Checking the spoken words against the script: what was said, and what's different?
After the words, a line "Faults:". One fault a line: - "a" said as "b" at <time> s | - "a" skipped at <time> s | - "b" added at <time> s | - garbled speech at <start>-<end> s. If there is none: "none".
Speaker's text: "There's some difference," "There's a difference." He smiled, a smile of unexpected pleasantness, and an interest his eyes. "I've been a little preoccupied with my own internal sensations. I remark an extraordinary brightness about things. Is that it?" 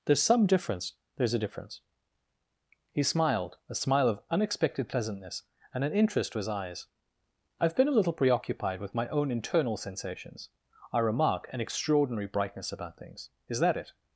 "There's some difference," "There's a difference." He smiled, a smile of unexpected pleasantness, and an interest his eyes. "I've been a little preoccupied with my own internal sensations. I remark an extraordinary brightness about things. Is that it?"
Faults:
none